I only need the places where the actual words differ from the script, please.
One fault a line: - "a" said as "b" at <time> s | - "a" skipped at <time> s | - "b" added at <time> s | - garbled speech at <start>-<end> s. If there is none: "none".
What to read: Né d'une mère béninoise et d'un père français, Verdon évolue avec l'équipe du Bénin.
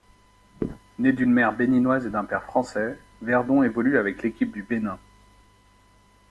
none